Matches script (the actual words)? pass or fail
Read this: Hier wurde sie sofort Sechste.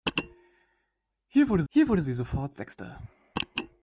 fail